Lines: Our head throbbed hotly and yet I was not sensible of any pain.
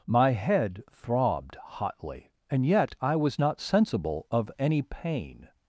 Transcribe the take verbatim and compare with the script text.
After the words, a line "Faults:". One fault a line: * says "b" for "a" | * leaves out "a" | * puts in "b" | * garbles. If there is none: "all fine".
My head throbbed hotly and yet I was not sensible of any pain.
Faults:
* says "My" for "Our"